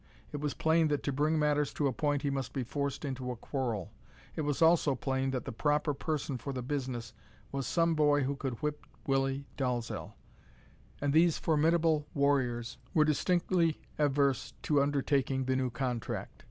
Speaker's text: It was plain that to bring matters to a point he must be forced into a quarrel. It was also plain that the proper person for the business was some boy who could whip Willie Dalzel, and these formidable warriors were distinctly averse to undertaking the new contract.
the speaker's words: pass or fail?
pass